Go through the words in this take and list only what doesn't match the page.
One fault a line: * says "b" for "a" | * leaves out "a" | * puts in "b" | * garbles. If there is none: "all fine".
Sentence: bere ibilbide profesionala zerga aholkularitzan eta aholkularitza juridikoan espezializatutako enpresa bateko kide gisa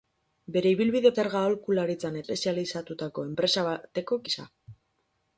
* leaves out "profesionala"
* leaves out "eta aholkularitza juridikoan"
* leaves out "kide"